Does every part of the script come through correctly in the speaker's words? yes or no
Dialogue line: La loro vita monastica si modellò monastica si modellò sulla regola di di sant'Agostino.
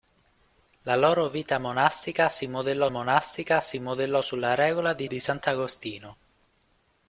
yes